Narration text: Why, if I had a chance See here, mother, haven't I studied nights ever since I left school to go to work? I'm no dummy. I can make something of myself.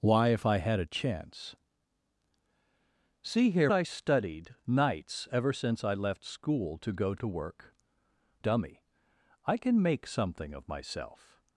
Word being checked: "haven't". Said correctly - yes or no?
no